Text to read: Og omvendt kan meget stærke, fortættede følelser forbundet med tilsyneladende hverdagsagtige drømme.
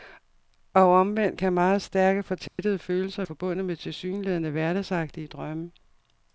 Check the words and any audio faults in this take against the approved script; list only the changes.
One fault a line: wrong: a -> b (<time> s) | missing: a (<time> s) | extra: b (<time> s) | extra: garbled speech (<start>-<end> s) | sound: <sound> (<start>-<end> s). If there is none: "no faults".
sound: dropout (2.5-2.6 s)